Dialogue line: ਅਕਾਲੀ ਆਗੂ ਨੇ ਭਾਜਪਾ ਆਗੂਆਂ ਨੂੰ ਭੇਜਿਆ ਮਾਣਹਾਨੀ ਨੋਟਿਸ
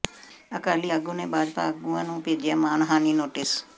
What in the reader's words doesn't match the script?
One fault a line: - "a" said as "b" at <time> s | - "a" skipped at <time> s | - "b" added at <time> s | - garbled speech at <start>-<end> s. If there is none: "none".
none